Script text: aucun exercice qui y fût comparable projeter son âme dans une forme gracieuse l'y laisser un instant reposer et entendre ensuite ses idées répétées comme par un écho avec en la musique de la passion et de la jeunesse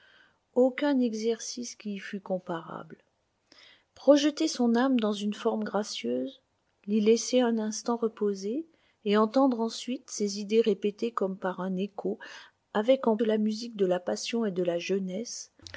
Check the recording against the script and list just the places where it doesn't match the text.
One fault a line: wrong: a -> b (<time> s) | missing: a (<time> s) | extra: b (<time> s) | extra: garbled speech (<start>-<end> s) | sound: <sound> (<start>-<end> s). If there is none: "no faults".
no faults